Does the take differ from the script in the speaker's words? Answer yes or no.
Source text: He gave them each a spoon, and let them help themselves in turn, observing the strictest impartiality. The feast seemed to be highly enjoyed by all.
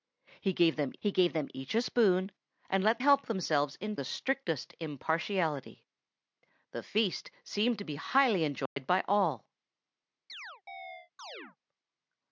yes